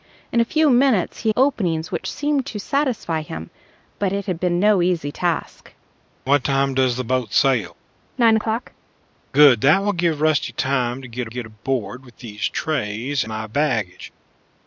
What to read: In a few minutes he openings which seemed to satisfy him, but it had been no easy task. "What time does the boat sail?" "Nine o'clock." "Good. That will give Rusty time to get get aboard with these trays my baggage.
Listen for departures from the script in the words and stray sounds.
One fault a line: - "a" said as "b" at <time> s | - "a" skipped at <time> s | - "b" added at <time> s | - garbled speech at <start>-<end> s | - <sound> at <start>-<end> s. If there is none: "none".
none